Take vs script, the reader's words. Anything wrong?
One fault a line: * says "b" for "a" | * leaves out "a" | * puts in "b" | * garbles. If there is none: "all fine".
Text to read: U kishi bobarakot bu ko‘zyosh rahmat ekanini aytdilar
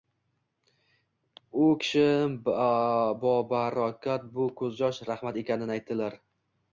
all fine